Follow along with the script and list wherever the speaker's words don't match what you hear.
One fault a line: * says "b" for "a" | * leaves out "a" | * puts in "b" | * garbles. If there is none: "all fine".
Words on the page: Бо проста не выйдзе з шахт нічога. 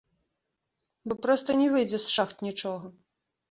all fine